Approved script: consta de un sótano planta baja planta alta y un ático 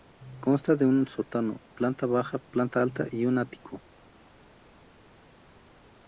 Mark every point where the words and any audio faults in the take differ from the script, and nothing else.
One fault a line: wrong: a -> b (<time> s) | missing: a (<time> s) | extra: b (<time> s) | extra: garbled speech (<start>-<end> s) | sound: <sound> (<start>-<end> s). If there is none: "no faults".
no faults